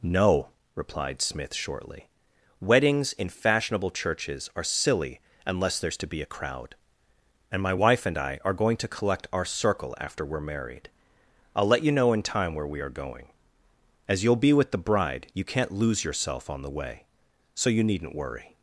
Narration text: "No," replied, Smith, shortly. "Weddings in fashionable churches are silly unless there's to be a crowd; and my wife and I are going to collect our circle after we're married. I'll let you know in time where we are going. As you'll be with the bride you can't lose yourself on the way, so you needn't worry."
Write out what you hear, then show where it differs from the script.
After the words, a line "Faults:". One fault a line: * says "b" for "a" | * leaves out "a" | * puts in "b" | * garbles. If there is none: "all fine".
"No," replied, Smith, shortly. "Weddings in fashionable churches are silly unless there's to be a crowd; and my wife and I are going to collect our circle after we're married. I'll let you know in time where we are going. As you'll be with the bride you can't lose yourself on the way, so you needn't worry."
Faults:
all fine